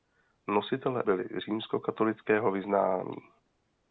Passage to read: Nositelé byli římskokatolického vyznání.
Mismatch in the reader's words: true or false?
false